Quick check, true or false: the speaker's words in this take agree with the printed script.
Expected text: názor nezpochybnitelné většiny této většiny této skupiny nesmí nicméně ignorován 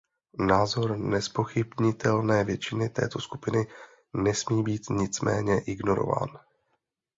false